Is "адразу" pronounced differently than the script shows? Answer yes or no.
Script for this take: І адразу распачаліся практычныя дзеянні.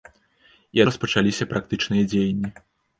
yes